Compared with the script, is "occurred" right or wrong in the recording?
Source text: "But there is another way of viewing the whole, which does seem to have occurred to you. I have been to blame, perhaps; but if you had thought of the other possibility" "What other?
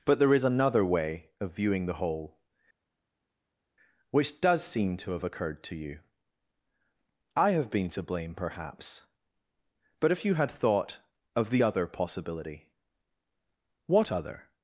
right